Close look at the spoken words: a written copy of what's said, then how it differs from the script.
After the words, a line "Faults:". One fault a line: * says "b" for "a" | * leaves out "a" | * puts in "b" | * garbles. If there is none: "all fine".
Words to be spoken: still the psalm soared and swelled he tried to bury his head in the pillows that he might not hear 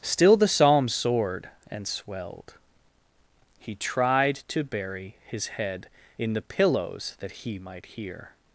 still the psalm soared and swelled he tried to bury his head in the pillows that he might hear
Faults:
* leaves out "not"